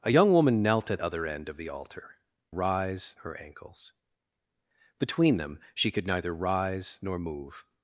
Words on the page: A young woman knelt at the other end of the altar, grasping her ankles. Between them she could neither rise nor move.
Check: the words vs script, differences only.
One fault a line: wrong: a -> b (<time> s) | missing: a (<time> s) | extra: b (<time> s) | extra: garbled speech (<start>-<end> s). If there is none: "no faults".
missing: the (1.0 s)
wrong: grasping -> rise (2.5 s)